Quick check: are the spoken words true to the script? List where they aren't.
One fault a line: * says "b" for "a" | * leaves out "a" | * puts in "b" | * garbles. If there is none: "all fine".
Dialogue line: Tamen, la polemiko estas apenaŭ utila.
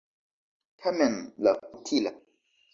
* leaves out "polemiko estas apenaŭ"